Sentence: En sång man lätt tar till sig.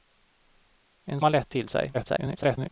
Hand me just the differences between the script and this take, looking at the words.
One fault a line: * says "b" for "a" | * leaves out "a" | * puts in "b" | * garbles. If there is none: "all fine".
* leaves out "sång"
* leaves out "tar"
* garbles